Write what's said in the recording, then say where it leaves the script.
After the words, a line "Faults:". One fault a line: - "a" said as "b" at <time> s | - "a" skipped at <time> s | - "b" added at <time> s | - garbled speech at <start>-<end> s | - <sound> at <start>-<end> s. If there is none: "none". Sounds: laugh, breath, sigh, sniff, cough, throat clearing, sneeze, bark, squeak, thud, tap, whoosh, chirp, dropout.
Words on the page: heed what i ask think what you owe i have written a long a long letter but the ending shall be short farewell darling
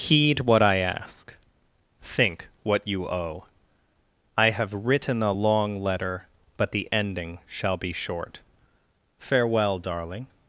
heed what i ask think what you owe i have written a long letter but the ending shall be short farewell darling
Faults:
- "a long" skipped at 5.8 s